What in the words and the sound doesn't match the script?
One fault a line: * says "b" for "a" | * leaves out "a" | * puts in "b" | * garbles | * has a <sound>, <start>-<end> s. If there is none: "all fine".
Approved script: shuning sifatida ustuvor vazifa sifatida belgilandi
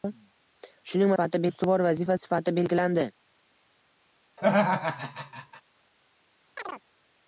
* has a laugh, 4.4-5.6 s
* has a chirp, 6.6-6.8 s